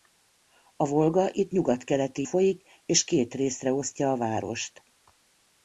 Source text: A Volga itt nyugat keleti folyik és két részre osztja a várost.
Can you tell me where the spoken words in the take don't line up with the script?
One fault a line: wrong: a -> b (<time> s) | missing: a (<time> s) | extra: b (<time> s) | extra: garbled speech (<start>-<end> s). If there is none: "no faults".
no faults